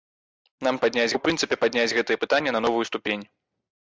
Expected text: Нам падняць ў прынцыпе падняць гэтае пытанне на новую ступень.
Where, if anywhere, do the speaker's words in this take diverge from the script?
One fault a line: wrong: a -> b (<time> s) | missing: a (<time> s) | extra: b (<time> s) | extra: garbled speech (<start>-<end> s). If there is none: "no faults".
no faults